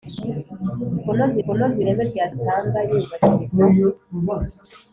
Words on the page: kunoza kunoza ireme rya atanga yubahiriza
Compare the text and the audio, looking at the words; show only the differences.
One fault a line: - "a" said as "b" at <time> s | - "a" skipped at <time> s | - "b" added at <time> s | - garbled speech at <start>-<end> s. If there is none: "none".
none